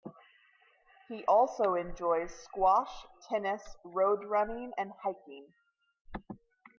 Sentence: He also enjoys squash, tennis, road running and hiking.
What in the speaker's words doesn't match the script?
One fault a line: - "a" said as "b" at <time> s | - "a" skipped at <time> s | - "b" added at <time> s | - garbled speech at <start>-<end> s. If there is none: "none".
none